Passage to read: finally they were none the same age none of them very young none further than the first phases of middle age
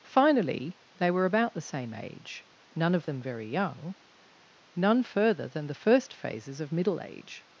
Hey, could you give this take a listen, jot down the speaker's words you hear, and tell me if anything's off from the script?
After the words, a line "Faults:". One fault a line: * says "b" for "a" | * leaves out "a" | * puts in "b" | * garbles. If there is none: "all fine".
finally they were about the same age none of them very young none further than the first phases of middle age
Faults:
* says "about" for "none"